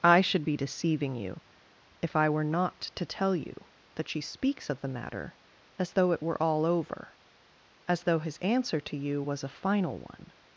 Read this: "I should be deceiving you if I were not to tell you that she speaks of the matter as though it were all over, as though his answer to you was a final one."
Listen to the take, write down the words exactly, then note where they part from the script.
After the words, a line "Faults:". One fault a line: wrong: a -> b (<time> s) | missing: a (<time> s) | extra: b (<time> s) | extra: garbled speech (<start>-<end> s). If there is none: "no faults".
"I should be deceiving you if I were not to tell you that she speaks of the matter as though it were all over, as though his answer to you was a final one."
Faults:
no faults